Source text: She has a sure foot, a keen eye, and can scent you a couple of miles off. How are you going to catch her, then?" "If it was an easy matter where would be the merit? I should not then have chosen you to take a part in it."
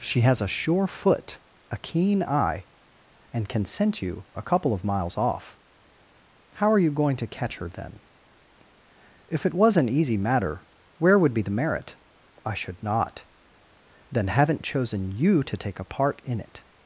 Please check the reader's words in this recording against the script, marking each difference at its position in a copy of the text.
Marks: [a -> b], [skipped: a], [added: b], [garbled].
She has a sure foot, a keen eye, and can scent you a couple of miles off. How are you going to catch her, then?" "If it was an easy matter where would be the merit? I should not then [have -> haven't] chosen you to take a part in it."